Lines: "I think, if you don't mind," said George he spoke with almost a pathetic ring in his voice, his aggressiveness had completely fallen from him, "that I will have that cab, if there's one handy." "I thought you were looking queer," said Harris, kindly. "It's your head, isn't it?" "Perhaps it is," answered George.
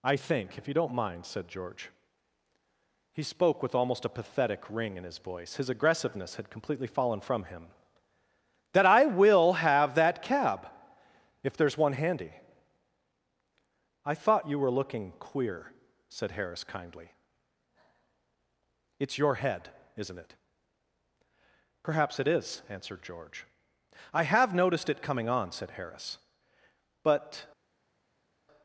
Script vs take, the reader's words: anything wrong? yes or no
yes